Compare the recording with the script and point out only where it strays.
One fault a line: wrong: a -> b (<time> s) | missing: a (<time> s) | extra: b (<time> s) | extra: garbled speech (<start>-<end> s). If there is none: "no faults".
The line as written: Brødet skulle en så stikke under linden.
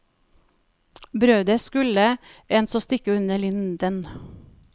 no faults